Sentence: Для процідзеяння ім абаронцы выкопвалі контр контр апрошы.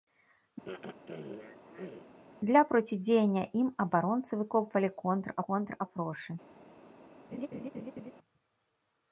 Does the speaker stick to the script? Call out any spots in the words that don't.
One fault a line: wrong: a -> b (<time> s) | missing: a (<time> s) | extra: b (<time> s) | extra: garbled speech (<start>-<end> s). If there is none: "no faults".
no faults